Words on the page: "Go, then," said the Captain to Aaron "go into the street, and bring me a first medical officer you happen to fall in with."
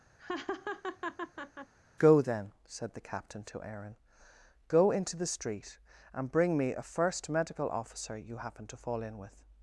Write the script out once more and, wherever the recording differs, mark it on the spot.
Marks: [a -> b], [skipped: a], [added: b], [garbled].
"Go, then," said the Captain to Aaron "go into the street, and bring me a first medical officer you happen to fall in with."